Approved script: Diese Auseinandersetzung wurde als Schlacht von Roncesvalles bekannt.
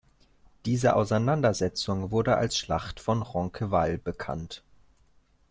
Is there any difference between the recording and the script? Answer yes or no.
no